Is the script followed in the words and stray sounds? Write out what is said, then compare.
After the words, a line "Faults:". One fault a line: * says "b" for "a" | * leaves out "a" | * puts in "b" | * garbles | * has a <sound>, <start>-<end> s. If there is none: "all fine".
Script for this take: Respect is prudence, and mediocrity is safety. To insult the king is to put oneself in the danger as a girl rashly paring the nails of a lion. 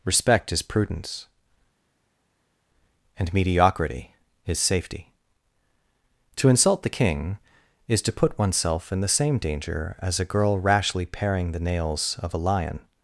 Respect is prudence, and mediocrity is safety. To insult the king is to put oneself in the same danger as a girl rashly paring the nails of a lion.
Faults:
* puts in "same"